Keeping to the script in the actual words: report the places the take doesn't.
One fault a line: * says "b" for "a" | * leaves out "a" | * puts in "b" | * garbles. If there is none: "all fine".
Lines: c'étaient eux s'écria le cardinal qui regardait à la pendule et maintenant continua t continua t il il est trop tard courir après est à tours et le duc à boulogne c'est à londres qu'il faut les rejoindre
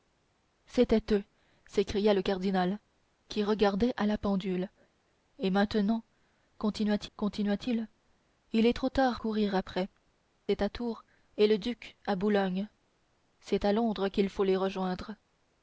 all fine